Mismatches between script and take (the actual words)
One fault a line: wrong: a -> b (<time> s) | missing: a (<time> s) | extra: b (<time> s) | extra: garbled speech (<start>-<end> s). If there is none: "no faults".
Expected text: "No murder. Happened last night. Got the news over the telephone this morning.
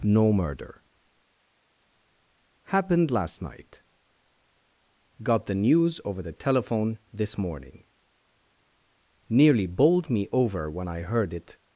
extra: Nearly bowled me over when I heard it (9.3 s)